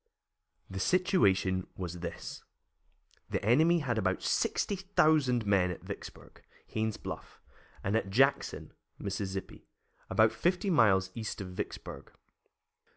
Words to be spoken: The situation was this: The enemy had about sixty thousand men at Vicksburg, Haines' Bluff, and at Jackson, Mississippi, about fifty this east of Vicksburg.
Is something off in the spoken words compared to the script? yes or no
yes